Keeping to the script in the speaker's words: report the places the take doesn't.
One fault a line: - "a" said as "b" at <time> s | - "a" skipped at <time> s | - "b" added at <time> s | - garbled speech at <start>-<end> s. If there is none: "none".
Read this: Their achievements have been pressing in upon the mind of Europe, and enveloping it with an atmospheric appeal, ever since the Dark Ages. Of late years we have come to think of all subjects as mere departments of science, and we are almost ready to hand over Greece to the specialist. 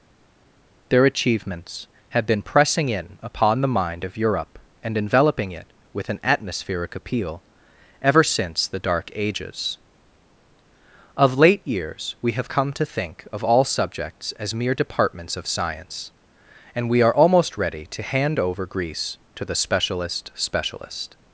- "specialist" added at 20.3 s